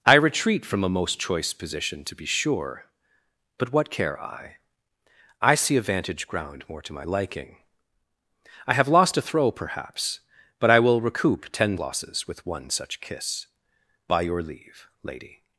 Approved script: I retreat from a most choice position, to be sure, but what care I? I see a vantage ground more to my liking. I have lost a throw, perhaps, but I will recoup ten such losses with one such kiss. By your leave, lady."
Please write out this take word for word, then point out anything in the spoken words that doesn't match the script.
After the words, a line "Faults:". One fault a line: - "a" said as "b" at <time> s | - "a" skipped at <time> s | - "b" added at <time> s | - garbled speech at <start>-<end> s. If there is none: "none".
I retreat from a most choice position, to be sure, but what care I? I see a vantage ground more to my liking. I have lost a throw, perhaps, but I will recoup ten losses with one such kiss. By your leave, lady."
Faults:
- "such" skipped at 11.8 s